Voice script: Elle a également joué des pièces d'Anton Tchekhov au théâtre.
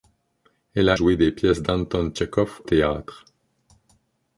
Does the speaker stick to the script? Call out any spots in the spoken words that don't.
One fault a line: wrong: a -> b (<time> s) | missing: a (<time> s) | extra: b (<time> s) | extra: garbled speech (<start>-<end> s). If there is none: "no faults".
missing: également (1.0 s)
missing: au (2.6 s)